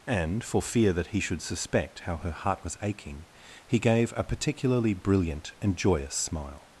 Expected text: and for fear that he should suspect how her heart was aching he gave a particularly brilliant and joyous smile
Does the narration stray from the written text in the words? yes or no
no